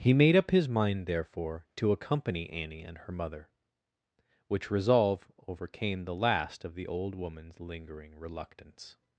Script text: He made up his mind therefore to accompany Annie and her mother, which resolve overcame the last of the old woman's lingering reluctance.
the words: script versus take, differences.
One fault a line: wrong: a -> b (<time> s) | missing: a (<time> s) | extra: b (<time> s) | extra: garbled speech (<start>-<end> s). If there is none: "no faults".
no faults